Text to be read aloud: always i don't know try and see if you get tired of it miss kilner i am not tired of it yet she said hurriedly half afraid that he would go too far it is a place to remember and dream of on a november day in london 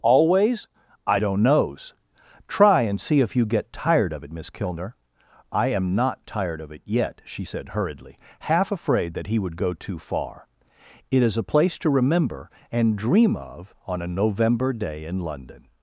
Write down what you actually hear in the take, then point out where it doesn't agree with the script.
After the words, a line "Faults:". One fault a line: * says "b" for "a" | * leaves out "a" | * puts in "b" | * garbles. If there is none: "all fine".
always i don't knows try and see if you get tired of it miss kilner i am not tired of it yet she said hurriedly half afraid that he would go too far it is a place to remember and dream of on a november day in london
Faults:
* says "knows" for "know"